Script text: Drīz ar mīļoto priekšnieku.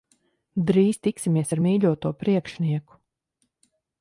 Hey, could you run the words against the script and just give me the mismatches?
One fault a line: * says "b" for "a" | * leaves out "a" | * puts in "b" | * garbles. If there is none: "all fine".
* puts in "tiksimies"